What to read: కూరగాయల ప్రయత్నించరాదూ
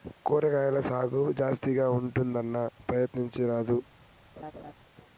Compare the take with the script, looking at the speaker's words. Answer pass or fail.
fail